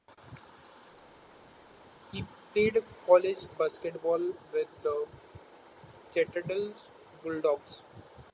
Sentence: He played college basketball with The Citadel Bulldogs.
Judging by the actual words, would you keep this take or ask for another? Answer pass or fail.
pass